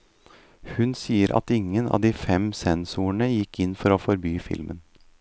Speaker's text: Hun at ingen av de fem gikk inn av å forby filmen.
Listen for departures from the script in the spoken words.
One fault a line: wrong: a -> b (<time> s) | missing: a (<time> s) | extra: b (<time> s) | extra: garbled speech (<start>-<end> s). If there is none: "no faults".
extra: sier (1.0 s)
extra: sensorene (2.6 s)
wrong: av -> for (3.8 s)